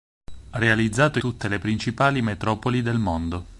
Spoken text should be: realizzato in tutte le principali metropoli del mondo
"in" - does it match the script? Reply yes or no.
no